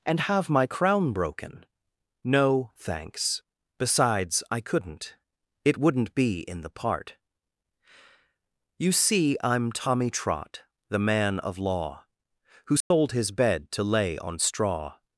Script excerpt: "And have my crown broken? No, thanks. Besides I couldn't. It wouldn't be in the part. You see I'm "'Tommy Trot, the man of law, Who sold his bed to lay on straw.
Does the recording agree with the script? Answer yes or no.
yes